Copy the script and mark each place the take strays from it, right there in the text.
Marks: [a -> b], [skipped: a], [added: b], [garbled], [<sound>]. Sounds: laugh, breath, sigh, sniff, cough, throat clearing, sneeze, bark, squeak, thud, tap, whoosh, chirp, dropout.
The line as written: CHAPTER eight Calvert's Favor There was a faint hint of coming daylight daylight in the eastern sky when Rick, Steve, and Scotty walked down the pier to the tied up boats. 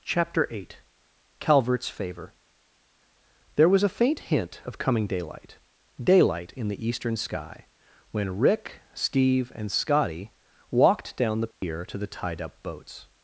CHAPTER eight Calvert's Favor There was a faint hint of coming daylight daylight in the eastern sky when Rick, Steve, and Scotty walked down the pier [dropout] to the tied up boats.